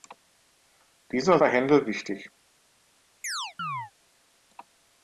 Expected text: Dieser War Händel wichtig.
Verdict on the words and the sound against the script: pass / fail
fail